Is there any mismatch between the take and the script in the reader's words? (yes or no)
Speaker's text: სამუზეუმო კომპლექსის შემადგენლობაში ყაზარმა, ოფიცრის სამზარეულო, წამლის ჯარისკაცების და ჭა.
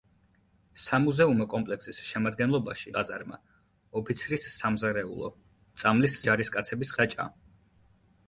no